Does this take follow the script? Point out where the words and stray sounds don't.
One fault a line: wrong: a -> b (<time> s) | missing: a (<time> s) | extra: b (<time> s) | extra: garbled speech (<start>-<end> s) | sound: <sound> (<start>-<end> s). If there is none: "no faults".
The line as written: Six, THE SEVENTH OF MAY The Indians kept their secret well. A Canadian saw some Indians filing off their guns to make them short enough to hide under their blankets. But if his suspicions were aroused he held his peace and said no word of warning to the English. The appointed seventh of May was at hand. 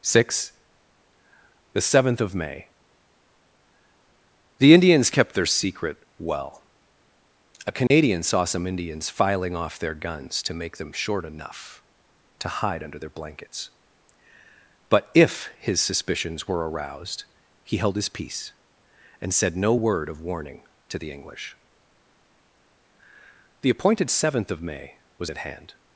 sound: dropout (7.9-7.9 s)